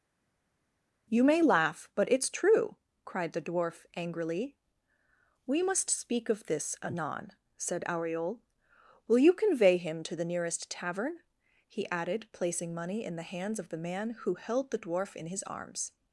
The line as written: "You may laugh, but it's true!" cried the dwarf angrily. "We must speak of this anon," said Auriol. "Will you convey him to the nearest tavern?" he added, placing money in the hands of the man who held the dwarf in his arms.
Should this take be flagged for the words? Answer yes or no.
no